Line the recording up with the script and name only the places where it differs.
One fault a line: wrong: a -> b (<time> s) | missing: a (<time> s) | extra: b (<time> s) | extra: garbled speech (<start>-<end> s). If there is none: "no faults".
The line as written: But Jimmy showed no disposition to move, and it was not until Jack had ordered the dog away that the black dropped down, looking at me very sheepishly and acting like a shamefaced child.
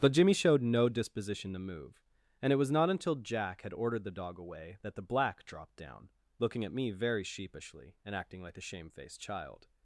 no faults